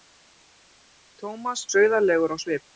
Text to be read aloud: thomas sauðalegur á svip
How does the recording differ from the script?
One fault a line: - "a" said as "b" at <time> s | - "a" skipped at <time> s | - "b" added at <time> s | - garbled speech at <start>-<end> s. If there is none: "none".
none